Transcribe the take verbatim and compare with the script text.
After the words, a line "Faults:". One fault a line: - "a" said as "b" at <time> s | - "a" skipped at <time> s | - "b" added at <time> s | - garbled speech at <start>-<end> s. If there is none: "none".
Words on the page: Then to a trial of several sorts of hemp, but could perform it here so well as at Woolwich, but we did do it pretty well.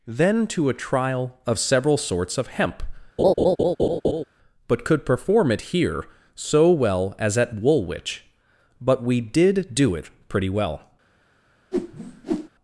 Then to a trial of several sorts of hemp, but could perform it here so well as at Woolwich, but we did do it pretty well.
Faults:
none